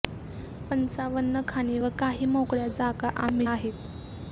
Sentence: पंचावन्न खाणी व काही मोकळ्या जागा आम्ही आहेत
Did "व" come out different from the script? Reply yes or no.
no